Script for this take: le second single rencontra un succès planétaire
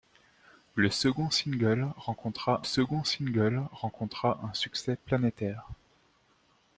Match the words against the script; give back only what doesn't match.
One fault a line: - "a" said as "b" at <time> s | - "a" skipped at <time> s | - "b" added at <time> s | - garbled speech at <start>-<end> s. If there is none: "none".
- "second single rencontra" added at 2.6 s